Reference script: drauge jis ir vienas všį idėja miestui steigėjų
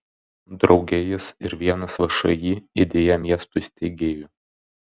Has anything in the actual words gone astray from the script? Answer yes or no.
no